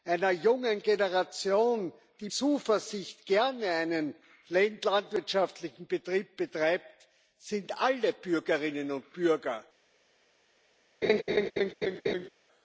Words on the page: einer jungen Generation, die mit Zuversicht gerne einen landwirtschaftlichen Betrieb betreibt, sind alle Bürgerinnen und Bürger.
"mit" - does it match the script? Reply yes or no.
no